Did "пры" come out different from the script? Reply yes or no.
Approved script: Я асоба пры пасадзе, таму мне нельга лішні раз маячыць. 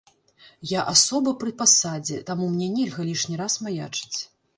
no